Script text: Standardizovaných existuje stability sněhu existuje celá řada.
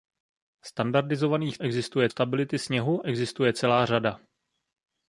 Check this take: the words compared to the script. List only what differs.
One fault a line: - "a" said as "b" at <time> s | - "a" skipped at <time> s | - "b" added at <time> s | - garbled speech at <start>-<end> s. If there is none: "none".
none